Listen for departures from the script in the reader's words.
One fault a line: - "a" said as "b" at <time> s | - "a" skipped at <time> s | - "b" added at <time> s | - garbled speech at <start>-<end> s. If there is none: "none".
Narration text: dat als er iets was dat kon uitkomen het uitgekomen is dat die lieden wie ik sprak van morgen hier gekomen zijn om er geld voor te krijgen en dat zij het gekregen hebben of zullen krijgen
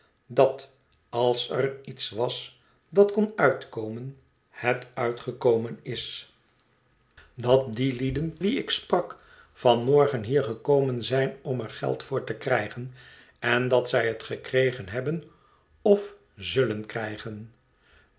none